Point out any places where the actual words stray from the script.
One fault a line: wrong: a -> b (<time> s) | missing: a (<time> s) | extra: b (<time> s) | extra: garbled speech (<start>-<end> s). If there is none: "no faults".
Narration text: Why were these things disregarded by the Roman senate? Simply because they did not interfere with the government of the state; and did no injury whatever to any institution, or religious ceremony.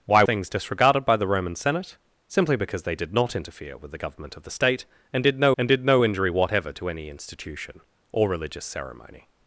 missing: were these (0.2 s)
extra: and did no (5.6 s)